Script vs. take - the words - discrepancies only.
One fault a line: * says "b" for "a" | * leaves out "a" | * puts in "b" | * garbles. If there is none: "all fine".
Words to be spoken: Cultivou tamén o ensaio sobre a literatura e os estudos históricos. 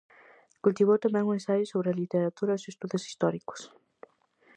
all fine